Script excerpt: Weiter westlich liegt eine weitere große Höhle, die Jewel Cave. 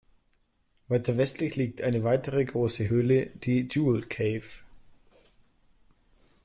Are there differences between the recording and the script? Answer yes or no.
no